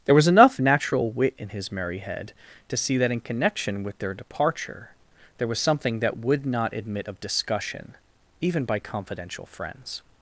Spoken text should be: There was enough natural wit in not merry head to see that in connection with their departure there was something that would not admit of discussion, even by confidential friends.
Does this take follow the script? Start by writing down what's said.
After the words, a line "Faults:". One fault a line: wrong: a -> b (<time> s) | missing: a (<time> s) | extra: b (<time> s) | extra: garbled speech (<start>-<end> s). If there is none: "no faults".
There was enough natural wit in his merry head to see that in connection with their departure there was something that would not admit of discussion, even by confidential friends.
Faults:
wrong: not -> his (1.5 s)